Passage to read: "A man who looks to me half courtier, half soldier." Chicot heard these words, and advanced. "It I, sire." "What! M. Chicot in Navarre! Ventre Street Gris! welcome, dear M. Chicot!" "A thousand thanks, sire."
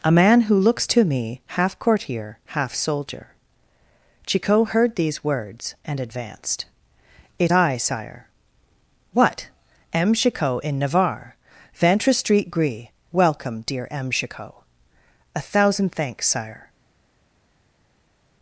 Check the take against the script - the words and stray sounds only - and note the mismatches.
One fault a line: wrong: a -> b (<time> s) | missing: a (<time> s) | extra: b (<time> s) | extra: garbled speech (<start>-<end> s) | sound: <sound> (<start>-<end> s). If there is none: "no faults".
no faults